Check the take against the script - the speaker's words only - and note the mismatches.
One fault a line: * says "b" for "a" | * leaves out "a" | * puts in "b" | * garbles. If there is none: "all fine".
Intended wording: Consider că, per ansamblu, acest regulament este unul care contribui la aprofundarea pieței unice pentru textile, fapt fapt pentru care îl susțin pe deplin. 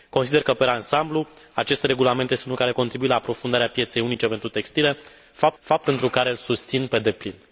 all fine